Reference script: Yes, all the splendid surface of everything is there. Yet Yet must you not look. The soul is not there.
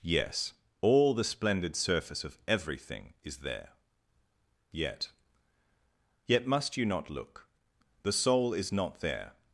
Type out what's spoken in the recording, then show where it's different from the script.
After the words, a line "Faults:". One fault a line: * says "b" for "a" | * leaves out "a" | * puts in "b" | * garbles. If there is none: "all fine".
Yes, all the splendid surface of everything is there. Yet Yet must you not look. The soul is not there.
Faults:
all fine